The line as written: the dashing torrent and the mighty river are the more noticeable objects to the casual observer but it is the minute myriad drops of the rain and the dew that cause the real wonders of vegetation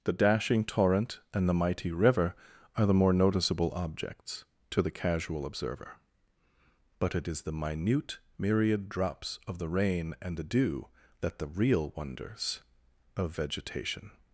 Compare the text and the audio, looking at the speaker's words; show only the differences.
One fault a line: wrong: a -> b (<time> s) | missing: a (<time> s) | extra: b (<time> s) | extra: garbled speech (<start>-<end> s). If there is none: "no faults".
missing: cause (11.4 s)